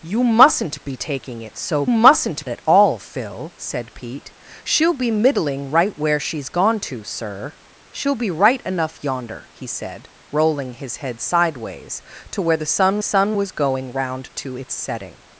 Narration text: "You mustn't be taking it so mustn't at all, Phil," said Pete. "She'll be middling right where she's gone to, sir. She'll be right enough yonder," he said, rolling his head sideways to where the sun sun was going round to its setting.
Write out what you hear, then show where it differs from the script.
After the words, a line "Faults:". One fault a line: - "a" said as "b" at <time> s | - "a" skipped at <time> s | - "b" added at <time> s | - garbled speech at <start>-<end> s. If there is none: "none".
"You mustn't be taking it so mustn't at all, Phil," said Pete. "She'll be middling right where she's gone to, sir. She'll be right enough yonder," he said, rolling his head sideways to where the sun sun was going round to its setting.
Faults:
none